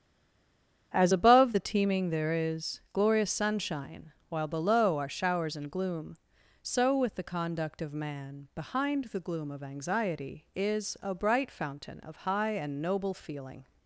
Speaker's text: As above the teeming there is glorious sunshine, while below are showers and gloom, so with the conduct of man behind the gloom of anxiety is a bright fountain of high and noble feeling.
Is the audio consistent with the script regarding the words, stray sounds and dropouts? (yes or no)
yes